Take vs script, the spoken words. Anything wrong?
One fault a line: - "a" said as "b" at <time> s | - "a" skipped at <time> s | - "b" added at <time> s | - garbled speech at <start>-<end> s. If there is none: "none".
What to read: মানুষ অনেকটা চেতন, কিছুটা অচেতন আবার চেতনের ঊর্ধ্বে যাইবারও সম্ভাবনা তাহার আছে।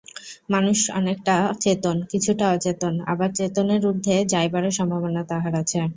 none